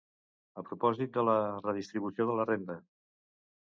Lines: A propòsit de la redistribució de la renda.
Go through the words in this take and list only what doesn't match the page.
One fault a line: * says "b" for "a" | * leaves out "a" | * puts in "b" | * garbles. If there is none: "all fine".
all fine